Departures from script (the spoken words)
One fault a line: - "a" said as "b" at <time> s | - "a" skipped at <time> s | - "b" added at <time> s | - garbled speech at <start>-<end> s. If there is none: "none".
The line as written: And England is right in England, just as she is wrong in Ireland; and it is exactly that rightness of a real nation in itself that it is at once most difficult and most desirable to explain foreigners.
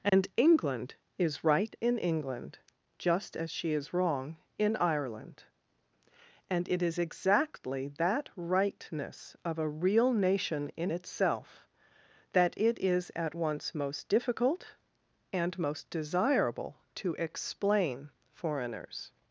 none